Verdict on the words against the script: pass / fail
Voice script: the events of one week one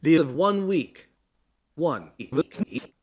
fail